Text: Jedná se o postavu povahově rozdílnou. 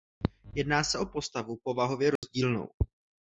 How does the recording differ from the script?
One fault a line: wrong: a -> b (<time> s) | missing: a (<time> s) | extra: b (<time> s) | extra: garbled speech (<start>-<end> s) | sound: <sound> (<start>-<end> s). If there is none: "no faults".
sound: dropout (2.2-2.2 s)